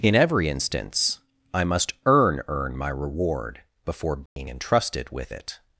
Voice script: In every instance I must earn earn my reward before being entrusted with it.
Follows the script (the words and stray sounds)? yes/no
no